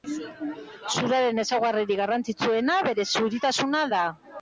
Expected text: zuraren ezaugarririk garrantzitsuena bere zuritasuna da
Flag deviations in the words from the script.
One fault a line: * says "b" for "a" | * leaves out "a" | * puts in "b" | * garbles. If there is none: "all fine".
all fine